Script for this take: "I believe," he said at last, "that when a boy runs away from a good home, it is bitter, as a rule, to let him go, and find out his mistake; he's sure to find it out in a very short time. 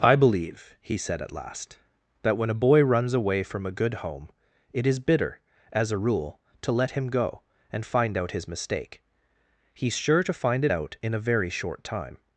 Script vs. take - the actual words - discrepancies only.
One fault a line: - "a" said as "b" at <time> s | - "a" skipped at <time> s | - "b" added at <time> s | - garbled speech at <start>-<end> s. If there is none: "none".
none